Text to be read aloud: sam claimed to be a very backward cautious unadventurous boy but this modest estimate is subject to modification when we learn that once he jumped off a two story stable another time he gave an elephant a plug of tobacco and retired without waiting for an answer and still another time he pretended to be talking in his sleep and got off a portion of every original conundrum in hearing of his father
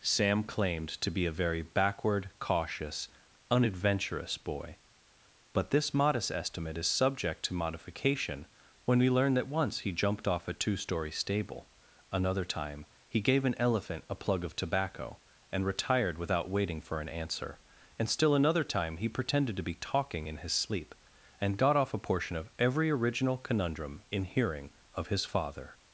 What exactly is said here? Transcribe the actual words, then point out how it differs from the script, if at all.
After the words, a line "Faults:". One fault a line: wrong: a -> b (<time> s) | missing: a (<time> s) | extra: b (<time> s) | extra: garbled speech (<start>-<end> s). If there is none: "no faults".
sam claimed to be a very backward cautious unadventurous boy but this modest estimate is subject to modification when we learn that once he jumped off a two story stable another time he gave an elephant a plug of tobacco and retired without waiting for an answer and still another time he pretended to be talking in his sleep and got off a portion of every original conundrum in hearing of his father
Faults:
no faults